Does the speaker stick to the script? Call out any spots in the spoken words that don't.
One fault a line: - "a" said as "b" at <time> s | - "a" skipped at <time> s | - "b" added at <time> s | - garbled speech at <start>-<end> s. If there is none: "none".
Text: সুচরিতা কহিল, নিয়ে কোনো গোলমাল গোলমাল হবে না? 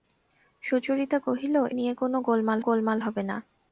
none